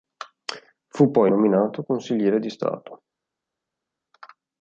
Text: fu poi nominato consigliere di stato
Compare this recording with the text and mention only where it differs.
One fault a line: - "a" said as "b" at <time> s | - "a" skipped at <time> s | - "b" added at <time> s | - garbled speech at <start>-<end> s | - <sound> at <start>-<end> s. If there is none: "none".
none